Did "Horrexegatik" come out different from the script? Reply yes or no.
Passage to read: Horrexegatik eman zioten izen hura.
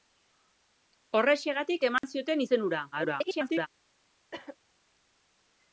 no